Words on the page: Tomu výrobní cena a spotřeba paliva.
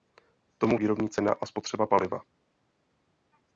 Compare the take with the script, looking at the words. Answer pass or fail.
pass